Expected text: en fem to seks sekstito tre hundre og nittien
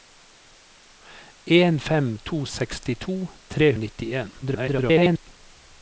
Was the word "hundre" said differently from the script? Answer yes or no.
yes